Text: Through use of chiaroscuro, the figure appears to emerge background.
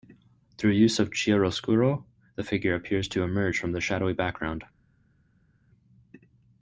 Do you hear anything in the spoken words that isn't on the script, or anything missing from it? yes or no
yes